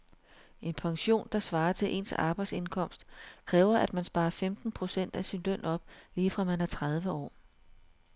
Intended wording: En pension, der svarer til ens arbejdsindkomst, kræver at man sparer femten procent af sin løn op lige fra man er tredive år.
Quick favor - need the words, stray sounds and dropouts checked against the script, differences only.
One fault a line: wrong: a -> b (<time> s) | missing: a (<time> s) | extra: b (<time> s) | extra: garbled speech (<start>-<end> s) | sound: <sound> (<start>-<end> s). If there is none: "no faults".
no faults